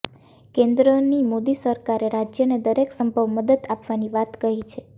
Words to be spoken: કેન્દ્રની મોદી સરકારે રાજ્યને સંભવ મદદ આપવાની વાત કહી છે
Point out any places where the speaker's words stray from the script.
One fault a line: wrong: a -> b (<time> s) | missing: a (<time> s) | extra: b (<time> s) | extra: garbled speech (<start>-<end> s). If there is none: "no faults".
extra: દરેક (2.6 s)